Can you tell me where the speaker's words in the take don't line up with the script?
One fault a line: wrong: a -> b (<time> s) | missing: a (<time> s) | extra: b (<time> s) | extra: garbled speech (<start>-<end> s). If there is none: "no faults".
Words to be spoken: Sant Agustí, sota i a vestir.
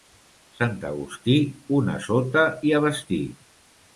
extra: una (1.8 s)